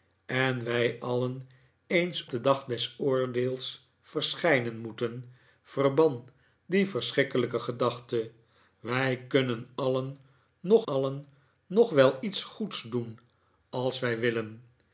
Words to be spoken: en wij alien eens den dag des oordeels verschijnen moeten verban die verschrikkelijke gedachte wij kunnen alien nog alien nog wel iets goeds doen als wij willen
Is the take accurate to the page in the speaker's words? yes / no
yes